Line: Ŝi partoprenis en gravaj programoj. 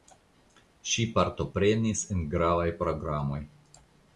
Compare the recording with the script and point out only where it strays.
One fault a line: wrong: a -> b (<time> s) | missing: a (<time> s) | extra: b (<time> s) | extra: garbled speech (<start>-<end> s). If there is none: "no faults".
no faults